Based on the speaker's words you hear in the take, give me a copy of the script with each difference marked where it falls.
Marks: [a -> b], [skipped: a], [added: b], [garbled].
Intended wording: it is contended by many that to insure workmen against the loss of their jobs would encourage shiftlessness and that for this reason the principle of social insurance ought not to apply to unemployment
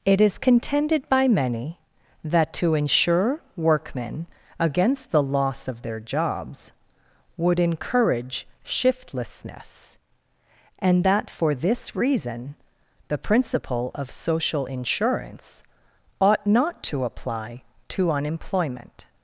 it is contended by many that to insure workmen against the loss of their jobs would encourage shiftlessness and that for this reason the principle of social insurance ought not to apply to unemployment